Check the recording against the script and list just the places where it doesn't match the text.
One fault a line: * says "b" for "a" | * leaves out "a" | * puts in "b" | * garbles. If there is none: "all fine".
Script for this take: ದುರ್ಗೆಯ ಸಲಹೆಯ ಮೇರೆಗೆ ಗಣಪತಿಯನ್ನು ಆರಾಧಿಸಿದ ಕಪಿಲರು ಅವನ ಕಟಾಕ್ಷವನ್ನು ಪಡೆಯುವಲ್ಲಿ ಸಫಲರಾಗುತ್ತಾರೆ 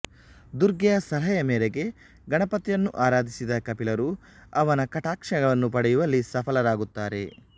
all fine